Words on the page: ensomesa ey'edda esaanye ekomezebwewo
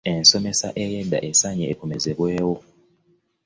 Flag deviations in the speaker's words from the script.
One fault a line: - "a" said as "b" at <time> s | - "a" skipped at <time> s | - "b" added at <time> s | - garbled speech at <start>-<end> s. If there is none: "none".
none